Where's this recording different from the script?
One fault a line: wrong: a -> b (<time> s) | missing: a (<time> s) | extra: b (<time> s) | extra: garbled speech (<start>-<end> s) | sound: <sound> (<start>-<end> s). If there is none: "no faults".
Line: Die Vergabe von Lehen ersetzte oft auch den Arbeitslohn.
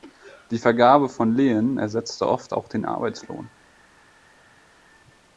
no faults